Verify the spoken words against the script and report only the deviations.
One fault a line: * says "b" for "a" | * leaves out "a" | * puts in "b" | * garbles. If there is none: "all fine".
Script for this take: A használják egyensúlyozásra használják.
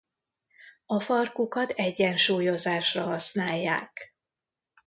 * says "farkukat" for "használják"